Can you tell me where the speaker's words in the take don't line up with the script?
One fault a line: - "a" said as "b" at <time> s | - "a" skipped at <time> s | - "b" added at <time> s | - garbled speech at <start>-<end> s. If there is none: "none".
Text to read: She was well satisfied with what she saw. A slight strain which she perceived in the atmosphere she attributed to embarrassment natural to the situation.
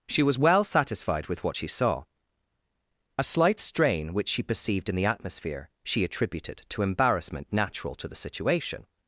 none